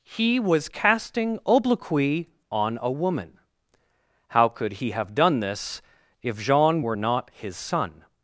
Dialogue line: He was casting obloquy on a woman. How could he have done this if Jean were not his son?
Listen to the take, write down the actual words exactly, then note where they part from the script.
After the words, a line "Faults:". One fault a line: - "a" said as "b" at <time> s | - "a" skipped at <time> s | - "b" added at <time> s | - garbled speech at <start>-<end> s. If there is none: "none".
He was casting obloquy on a woman. How could he have done this if Jean were not his son?
Faults:
none